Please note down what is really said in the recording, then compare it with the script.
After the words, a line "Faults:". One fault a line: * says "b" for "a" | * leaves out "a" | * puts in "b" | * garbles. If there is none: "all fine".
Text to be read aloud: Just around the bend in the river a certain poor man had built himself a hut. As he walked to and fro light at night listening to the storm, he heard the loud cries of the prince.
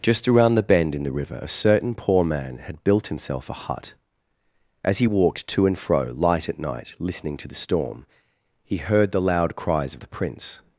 Just around the bend in the river a certain poor man had built himself a hut. As he walked to and fro light at night listening to the storm, he heard the loud cries of the prince.
Faults:
all fine